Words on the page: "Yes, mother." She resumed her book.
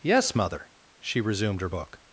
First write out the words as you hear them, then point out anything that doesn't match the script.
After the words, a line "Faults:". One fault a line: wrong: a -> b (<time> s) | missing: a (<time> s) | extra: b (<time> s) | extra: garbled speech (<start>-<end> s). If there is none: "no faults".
"Yes, mother." She resumed her book.
Faults:
no faults